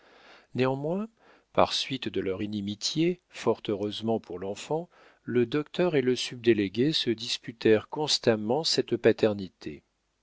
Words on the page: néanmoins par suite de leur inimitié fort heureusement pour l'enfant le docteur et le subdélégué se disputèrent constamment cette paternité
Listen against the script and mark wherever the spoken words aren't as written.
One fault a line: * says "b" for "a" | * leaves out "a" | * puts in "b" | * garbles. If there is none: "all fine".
all fine